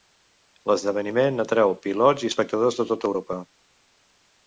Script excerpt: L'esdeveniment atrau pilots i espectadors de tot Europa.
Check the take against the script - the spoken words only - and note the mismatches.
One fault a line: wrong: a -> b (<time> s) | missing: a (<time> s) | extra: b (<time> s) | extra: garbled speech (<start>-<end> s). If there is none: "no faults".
no faults